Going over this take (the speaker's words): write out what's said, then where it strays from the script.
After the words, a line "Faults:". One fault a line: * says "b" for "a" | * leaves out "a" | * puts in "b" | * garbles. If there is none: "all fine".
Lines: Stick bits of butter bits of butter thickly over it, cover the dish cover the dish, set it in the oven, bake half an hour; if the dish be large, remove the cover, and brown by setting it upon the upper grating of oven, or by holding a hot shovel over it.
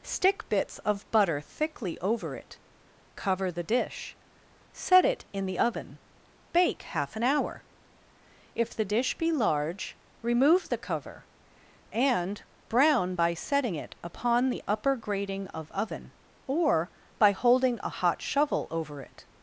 Stick bits of butter thickly over it, cover the dish, set it in the oven, bake half an hour; if the dish be large, remove the cover, and brown by setting it upon the upper grating of oven, or by holding a hot shovel over it.
Faults:
* leaves out "bits of butter"
* leaves out "cover the dish"